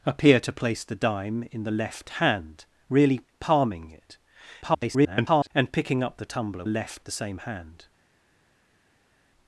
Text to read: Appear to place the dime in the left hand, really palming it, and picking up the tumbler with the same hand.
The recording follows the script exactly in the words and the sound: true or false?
false